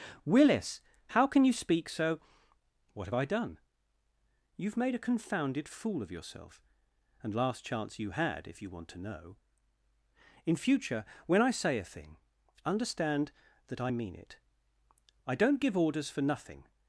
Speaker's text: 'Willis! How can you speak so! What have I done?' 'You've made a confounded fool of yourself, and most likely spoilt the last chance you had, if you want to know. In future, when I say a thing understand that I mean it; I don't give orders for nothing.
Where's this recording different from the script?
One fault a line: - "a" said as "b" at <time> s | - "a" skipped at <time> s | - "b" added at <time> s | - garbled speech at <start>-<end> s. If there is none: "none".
- "most likely spoilt the" skipped at 7.4 s